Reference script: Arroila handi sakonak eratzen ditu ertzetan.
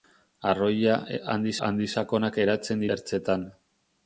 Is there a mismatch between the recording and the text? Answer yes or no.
yes